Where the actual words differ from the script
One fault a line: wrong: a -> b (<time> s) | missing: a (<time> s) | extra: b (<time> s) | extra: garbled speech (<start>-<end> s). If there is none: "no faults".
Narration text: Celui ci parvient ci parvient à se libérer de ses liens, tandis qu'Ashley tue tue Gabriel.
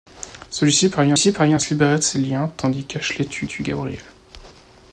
no faults